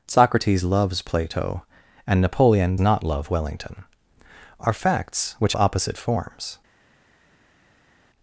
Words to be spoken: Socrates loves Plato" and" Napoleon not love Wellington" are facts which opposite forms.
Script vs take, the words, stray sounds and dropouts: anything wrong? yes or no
no